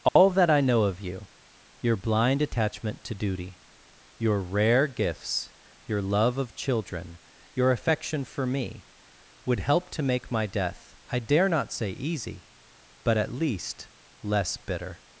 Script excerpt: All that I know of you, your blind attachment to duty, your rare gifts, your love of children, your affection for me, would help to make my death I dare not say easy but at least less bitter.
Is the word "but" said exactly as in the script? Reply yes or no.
yes